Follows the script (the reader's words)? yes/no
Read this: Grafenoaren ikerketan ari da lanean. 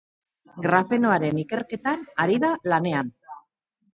yes